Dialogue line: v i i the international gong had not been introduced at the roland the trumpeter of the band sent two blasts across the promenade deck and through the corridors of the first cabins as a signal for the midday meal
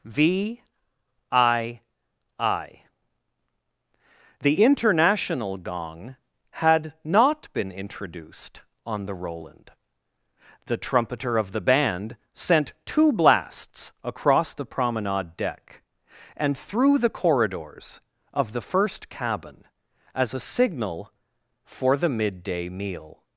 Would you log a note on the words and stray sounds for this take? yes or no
yes